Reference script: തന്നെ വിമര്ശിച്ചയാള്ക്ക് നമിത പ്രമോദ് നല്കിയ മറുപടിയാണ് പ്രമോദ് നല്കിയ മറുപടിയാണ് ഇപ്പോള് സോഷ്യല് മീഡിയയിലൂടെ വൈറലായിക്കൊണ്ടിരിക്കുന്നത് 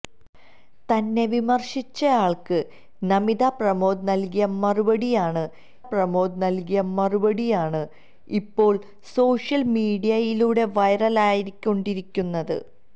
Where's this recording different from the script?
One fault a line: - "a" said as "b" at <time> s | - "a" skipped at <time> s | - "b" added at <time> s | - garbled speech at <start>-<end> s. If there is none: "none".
none